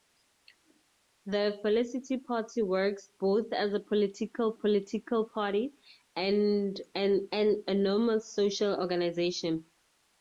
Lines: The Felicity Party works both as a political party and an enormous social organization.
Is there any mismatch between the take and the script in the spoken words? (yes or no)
yes